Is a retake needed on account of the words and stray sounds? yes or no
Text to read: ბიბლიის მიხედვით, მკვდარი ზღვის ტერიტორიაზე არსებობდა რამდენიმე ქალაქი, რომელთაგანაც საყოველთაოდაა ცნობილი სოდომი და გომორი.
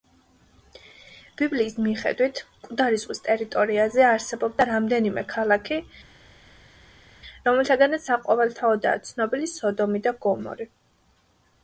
no